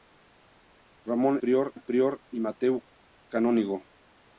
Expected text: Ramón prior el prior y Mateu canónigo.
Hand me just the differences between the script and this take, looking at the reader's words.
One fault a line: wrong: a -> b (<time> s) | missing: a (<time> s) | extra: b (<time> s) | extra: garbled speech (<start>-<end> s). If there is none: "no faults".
no faults